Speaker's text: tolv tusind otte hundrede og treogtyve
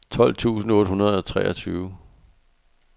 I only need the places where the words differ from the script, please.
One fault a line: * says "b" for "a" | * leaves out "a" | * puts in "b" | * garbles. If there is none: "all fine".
all fine